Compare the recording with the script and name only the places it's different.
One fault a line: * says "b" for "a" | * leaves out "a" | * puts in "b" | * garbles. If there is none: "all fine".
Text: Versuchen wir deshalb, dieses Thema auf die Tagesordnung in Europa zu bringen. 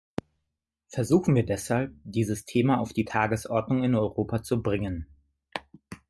all fine